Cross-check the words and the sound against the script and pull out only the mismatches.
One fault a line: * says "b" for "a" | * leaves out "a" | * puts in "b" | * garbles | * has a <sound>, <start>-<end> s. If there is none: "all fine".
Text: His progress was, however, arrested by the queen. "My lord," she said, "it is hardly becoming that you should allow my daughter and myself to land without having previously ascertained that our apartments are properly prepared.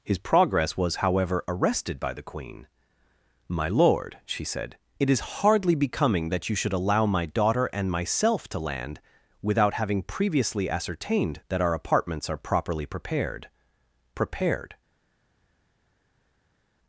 * puts in "prepared"